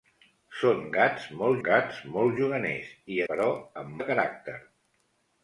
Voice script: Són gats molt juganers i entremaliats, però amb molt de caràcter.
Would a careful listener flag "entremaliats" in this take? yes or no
yes